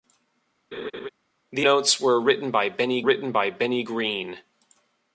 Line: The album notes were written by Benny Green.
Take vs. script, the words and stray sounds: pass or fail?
fail